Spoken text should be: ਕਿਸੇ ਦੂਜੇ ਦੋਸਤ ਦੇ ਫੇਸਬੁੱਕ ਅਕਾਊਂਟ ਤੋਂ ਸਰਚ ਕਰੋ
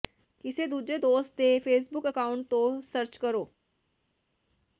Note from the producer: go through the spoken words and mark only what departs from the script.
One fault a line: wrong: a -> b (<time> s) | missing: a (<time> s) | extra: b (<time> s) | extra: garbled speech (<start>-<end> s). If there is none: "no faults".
no faults